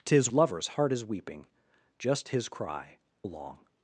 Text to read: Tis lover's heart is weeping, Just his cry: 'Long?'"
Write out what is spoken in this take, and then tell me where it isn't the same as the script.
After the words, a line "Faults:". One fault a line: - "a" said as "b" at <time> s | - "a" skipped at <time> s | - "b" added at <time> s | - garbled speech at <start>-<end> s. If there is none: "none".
Tis lover's heart is weeping, Just his cry: 'Long?'"
Faults:
none